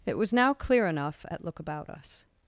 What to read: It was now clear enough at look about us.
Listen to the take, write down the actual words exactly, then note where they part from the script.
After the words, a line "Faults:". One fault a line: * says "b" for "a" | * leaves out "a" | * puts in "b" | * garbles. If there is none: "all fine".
It was now clear enough at look about us.
Faults:
all fine